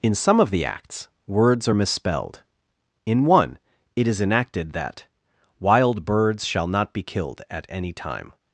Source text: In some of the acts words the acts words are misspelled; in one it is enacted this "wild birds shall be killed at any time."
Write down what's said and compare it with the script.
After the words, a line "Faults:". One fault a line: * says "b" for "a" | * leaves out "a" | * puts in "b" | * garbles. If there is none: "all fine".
In some of the acts words are misspelled; in one it is enacted that "wild birds shall not be killed at any time."
Faults:
* leaves out "the acts words"
* says "that" for "this"
* puts in "not"